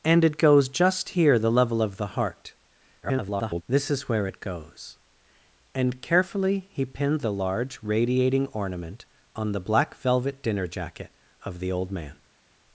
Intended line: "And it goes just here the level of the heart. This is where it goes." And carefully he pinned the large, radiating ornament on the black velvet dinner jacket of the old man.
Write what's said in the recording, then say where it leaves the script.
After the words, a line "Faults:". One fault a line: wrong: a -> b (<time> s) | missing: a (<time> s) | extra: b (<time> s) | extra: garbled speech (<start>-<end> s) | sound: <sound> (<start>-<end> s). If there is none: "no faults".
"And it goes just here the level of the heart. [garbled] This is where it goes." And carefully he pinned the large, radiating ornament on the black velvet dinner jacket of the old man.
Faults:
extra: garbled speech (3.0-3.6 s)